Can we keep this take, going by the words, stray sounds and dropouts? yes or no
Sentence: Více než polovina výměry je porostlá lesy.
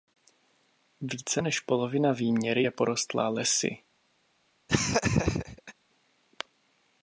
no